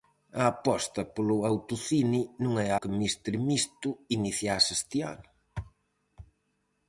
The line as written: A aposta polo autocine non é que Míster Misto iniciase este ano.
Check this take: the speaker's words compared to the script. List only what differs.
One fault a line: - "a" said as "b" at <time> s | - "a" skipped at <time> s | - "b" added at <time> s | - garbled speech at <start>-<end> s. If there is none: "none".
none